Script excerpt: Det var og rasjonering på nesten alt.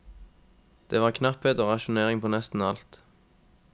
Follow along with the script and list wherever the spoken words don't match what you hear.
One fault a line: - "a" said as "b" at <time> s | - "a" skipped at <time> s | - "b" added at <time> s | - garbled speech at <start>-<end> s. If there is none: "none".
- "knapphet" added at 1.1 s